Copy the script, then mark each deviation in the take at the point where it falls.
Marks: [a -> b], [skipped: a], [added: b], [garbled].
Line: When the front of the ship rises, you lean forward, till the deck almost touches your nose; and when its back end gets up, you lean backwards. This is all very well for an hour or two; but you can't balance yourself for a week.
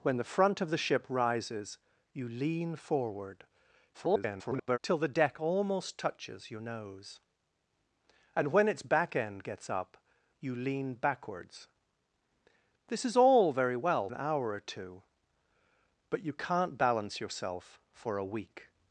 When the front of the ship rises, you lean forward, [garbled] till the deck almost touches your nose; and when its back end gets up, you lean backwards. This is all very well [skipped: for] an hour or two; but you can't balance yourself for a week.